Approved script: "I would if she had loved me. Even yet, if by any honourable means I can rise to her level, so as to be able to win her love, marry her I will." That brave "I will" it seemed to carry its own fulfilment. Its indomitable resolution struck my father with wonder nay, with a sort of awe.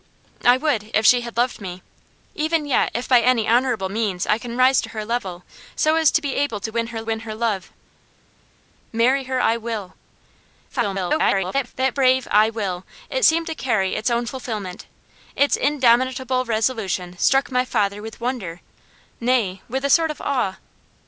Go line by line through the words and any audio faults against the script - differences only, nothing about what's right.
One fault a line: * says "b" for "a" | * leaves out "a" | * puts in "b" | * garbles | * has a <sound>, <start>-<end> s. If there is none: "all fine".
* puts in "win her"
* garbles